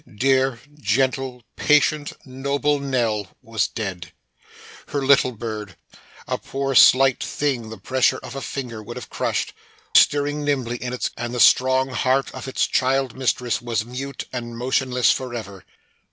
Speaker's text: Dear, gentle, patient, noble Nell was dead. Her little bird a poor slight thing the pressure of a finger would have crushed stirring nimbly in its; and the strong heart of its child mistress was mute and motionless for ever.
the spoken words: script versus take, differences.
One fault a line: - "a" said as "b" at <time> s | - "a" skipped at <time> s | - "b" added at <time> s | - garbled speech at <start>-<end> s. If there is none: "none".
none